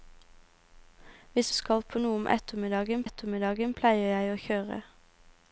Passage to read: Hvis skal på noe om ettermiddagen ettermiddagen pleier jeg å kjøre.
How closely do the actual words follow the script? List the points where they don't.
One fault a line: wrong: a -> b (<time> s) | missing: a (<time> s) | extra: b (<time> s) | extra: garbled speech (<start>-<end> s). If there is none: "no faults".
no faults